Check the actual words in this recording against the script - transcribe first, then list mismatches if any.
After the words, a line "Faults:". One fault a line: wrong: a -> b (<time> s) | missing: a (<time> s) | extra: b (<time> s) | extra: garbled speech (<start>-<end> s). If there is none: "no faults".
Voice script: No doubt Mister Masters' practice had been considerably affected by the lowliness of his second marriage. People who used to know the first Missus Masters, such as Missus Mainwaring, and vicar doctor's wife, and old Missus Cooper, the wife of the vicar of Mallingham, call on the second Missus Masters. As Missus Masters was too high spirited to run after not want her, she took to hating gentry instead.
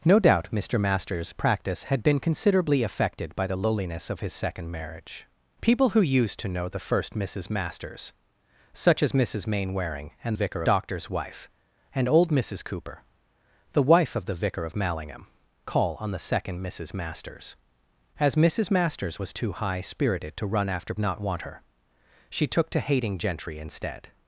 No doubt Mister Masters' practice had been considerably affected by the lowliness of his second marriage. People who used to know the first Missus Masters, such as Missus Mainwaring, and vicar doctor's wife, and old Missus Cooper, the wife of the vicar of Mallingham, call on the second Missus Masters. As Missus Masters was too high spirited to run after not want her, she took to hating gentry instead.
Faults:
no faults